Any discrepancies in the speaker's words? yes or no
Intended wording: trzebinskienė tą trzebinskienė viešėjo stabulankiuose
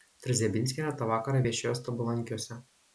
yes